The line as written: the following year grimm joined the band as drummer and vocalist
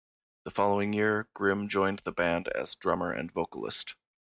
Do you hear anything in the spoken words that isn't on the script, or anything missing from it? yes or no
no